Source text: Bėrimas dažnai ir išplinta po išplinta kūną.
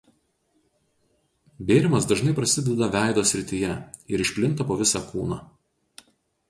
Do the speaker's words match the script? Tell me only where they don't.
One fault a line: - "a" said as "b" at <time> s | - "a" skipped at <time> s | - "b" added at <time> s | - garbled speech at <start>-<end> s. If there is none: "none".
- "prasideda veido srityje" added at 2.4 s
- "išplinta" said as "visą" at 4.9 s